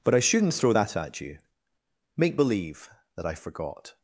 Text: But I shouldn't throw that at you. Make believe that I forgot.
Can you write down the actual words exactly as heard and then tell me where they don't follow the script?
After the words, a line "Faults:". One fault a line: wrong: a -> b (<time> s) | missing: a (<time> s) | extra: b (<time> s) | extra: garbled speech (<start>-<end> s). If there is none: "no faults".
But I shouldn't throw that at you. Make believe that I forgot.
Faults:
no faults